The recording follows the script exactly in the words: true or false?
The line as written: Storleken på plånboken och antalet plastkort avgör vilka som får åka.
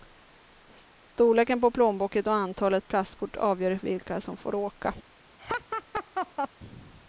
true